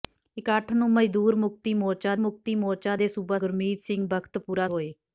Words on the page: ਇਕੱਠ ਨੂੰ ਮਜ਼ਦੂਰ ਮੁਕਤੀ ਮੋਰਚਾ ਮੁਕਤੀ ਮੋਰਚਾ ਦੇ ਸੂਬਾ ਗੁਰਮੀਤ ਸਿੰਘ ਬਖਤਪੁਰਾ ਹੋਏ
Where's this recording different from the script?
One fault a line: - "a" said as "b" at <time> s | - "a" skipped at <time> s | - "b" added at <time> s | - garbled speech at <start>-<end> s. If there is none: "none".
none